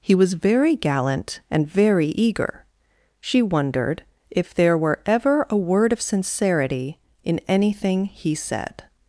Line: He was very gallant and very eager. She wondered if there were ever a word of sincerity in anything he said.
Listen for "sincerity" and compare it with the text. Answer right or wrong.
right